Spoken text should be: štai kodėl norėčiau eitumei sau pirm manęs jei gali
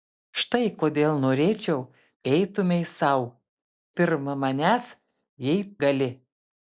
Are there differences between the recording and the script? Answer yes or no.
no